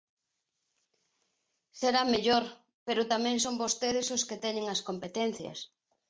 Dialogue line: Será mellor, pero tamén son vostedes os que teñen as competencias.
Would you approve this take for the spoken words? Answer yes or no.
yes